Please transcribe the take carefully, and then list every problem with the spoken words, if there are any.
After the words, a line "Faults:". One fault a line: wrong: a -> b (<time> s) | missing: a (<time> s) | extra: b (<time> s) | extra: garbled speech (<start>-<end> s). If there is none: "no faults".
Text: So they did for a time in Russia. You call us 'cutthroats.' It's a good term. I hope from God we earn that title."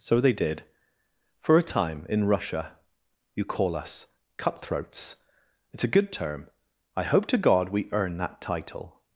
So they did for a time in Russia. You call us 'cutthroats.' It's a good term. I hope to God we earn that title."
Faults:
wrong: from -> to (7.3 s)